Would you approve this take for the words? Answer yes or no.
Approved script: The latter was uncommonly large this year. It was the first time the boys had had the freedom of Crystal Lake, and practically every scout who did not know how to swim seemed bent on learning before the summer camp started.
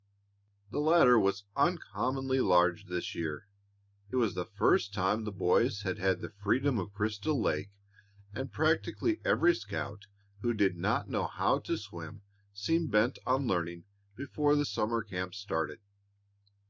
yes